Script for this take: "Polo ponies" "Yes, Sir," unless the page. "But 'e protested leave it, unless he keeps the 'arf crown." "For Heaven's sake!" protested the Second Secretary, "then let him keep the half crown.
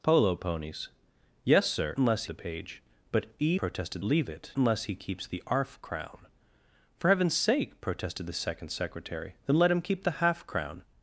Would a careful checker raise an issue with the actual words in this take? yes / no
no